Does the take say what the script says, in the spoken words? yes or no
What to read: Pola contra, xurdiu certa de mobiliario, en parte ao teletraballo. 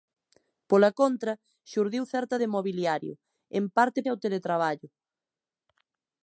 yes